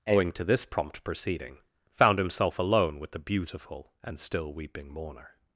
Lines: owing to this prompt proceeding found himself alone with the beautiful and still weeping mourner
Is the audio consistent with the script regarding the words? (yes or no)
yes